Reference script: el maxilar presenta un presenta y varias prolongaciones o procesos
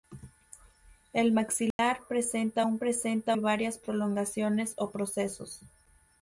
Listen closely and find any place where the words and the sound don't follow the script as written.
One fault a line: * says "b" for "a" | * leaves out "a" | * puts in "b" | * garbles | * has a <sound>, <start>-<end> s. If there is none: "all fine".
* has a dropout, 1.7-1.8 s